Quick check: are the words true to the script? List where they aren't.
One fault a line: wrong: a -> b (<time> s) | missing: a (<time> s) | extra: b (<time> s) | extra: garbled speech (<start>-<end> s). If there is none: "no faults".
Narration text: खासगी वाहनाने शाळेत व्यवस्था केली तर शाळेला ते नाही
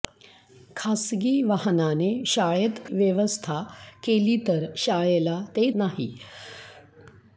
no faults